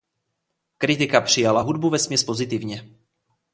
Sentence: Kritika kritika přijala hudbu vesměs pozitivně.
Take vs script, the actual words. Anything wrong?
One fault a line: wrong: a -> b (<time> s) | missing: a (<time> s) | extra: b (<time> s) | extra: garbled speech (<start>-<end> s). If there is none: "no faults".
missing: kritika (1.2 s)